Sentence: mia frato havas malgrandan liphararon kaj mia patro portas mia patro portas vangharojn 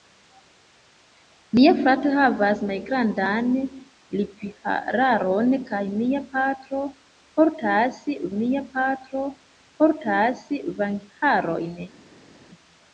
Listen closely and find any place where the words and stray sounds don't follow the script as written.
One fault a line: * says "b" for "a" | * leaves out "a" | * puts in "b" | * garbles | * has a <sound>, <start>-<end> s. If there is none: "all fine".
all fine